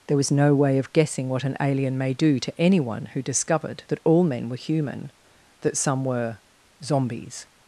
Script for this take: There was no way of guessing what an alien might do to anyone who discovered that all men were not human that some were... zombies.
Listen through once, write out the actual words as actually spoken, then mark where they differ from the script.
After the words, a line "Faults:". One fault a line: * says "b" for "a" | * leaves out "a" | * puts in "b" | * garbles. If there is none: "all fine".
There was no way of guessing what an alien may do to anyone who discovered that all men were human that some were... zombies.
Faults:
* says "may" for "might"
* leaves out "not"